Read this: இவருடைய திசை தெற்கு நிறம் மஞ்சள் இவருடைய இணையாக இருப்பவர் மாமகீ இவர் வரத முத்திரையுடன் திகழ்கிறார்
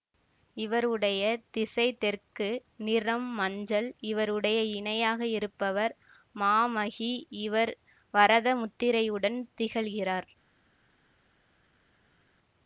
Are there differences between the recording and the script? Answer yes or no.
no